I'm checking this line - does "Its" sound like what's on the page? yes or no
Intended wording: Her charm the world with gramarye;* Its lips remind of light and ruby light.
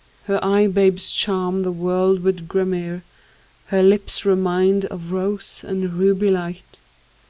no